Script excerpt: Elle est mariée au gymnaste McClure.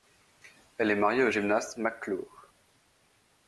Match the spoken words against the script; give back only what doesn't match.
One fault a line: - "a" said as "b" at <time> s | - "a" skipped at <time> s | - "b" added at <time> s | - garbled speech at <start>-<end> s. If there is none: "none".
none